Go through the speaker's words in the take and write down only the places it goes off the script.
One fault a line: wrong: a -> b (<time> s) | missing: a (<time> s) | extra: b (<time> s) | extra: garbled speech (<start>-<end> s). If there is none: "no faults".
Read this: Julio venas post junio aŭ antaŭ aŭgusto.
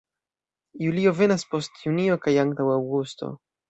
wrong: aŭ -> kaj (2.3 s)